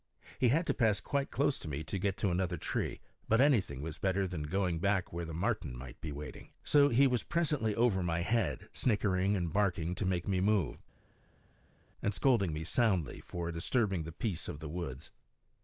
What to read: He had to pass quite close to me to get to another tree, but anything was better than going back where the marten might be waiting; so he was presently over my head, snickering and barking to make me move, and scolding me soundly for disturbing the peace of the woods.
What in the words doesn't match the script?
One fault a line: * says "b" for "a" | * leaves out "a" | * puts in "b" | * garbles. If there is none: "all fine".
all fine